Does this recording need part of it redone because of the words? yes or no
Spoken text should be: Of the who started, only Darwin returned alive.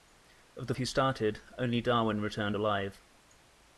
no